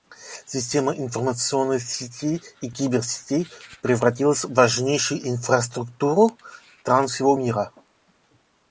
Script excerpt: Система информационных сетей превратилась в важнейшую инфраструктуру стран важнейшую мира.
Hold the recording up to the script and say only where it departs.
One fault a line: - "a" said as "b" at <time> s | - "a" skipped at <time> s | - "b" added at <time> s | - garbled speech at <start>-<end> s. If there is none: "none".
- "и киберсетей" added at 2.6 s
- "важнейшую" said as "всего" at 7.1 s